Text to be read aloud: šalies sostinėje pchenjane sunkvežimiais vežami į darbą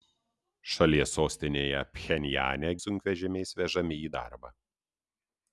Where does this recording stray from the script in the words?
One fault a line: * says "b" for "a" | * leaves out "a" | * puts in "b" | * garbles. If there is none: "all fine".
all fine